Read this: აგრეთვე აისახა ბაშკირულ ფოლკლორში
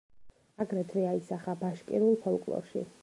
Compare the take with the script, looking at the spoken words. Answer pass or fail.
pass